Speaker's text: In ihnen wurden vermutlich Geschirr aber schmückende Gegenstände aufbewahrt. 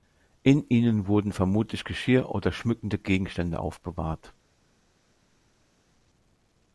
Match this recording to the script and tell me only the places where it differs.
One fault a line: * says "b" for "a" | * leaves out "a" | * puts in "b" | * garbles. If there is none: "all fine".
* says "oder" for "aber"